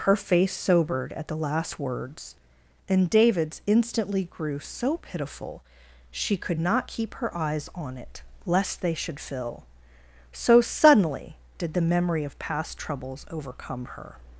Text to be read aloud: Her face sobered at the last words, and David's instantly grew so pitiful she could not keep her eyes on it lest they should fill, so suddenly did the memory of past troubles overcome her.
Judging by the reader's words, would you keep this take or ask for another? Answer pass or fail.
pass